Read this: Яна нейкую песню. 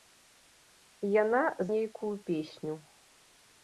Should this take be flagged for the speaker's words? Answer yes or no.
no